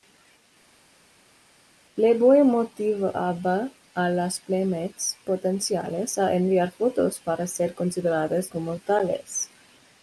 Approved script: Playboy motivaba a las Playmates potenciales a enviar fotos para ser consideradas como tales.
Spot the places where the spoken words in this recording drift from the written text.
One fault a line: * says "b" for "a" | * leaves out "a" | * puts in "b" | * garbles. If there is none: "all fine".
all fine